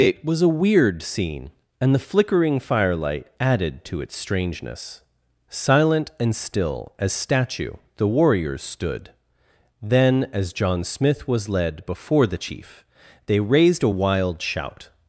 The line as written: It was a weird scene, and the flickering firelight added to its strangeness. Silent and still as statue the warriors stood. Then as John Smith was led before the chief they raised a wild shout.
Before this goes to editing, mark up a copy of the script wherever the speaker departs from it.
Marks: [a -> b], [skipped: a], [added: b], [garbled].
It was a weird scene, and the flickering firelight added to its strangeness. Silent and still as statue the warriors stood. Then as John Smith was led before the chief they raised a wild shout.